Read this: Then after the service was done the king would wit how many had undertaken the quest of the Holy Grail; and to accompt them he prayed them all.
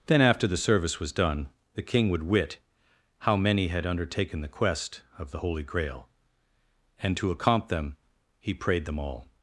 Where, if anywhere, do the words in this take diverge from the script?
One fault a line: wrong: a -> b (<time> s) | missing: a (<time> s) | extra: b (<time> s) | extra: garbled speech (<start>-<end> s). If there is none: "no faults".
no faults